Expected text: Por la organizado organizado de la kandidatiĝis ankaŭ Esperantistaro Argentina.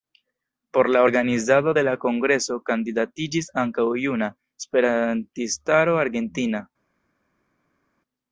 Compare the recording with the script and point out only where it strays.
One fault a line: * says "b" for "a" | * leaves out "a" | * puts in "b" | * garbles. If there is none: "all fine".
* leaves out "organizado"
* puts in "kongreso"
* puts in "Juna"